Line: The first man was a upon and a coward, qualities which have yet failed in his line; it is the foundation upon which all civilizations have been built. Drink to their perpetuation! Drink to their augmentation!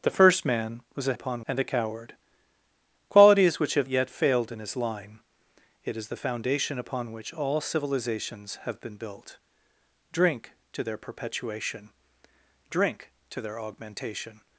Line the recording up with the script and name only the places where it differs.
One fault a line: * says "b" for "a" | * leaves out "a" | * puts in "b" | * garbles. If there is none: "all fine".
all fine